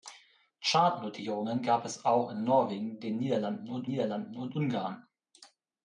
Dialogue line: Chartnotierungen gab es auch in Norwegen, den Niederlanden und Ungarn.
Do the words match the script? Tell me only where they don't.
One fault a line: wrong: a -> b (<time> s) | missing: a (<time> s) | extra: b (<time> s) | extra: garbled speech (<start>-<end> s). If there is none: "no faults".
extra: Niederlanden und (3.9 s)